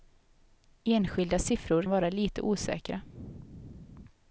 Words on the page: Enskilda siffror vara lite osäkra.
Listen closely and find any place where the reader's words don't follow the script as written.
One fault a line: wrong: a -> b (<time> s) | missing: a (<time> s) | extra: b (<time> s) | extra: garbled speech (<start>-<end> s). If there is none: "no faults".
no faults